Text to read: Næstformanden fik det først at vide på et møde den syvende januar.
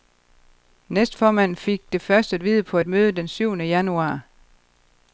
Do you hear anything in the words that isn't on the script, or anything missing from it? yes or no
no